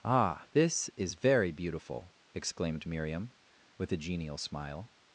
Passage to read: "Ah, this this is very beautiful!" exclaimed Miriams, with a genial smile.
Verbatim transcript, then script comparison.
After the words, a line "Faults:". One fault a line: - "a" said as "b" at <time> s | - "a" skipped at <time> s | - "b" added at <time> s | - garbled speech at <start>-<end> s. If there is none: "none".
"Ah, this is very beautiful!" exclaimed Miriam, with a genial smile.
Faults:
- "this" skipped at 0.9 s
- "Miriams" said as "Miriam" at 2.8 s